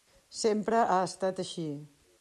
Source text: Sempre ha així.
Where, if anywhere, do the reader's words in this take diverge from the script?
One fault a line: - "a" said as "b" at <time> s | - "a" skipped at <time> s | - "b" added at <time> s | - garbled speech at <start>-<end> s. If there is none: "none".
- "estat" added at 1.1 s